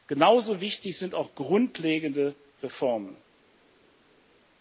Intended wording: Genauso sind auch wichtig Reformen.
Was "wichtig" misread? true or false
true